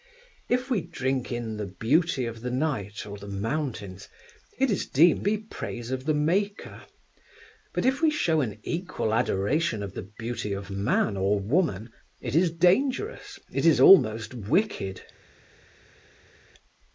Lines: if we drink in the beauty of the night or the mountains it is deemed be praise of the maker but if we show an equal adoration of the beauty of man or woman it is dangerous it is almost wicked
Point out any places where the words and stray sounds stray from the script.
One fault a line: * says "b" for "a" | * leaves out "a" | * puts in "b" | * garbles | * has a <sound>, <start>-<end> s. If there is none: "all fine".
all fine